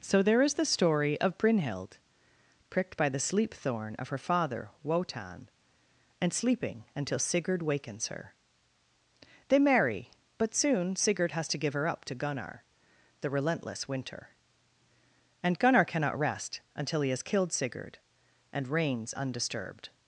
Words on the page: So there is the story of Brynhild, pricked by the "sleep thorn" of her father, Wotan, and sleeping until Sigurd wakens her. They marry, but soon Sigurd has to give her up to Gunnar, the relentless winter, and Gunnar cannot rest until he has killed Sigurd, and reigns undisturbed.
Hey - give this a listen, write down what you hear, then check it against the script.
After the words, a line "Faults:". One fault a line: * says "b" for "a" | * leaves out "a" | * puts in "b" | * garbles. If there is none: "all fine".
So there is the story of Brynhild, pricked by the "sleep thorn" of her father, Wotan, and sleeping until Sigurd wakens her. They marry, but soon Sigurd has to give her up to Gunnar, the relentless winter, and Gunnar cannot rest until he has killed Sigurd, and reigns undisturbed.
Faults:
all fine